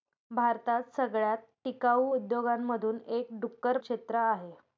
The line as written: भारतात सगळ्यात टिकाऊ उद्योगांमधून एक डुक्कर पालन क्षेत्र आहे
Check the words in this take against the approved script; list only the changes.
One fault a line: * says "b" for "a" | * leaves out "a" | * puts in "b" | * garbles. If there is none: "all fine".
* leaves out "पालन"